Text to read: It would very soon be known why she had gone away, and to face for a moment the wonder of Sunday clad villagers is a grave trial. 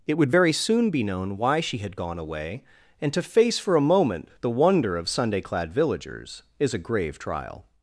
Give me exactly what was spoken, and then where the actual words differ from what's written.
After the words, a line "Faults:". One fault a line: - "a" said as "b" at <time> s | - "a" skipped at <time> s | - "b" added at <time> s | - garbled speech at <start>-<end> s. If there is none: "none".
It would very soon be known why she had gone away, and to face for a moment the wonder of Sunday clad villagers is a grave trial.
Faults:
none